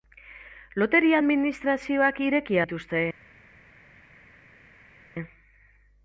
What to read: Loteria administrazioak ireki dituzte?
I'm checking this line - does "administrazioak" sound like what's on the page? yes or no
yes